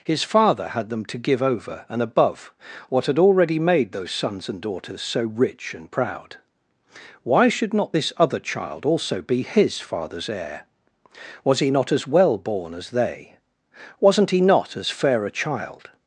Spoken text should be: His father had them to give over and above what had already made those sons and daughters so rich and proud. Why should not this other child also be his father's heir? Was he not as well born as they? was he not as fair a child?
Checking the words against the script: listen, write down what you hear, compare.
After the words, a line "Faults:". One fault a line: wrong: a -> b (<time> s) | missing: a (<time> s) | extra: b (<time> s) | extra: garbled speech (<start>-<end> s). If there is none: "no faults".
His father had them to give over and above what had already made those sons and daughters so rich and proud. Why should not this other child also be his father's heir? Was he not as well born as they? wasn't he not as fair a child?
Faults:
wrong: was -> wasn't (14.0 s)